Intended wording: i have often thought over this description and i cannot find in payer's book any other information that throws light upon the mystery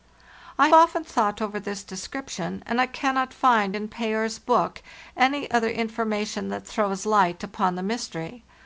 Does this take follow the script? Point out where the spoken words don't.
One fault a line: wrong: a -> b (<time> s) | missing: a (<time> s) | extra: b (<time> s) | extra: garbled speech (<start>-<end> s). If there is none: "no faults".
missing: have (0.7 s)